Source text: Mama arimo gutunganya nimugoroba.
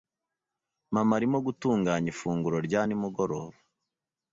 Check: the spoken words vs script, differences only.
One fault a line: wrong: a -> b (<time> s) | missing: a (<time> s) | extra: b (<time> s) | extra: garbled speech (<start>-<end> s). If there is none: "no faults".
extra: ifunguro rya (2.1 s)